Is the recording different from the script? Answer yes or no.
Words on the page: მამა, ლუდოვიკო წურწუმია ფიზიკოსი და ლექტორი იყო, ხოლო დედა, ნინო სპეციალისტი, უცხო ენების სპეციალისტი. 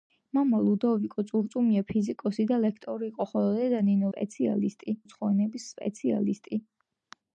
no